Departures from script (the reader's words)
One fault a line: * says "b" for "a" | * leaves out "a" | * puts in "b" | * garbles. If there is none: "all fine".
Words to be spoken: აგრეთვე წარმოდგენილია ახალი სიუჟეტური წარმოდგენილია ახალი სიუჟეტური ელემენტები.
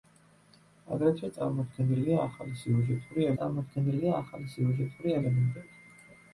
all fine